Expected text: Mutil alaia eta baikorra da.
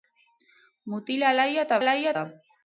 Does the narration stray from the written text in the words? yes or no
yes